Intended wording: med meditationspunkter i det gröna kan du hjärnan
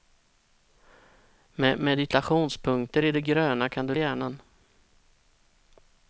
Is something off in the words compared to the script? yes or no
no